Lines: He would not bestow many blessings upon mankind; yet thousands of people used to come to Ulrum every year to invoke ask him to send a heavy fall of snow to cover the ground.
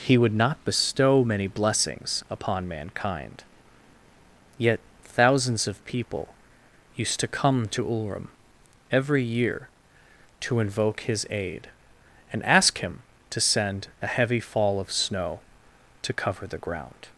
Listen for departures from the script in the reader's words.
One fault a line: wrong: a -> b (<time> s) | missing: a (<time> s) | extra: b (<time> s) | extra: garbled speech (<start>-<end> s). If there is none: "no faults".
extra: his aid and (11.0 s)